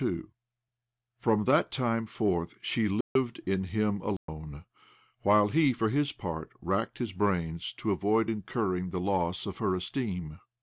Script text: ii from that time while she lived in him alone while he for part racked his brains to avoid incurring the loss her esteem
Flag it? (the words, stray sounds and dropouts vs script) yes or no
yes